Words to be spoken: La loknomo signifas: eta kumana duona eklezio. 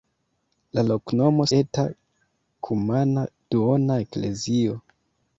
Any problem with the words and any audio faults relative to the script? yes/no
yes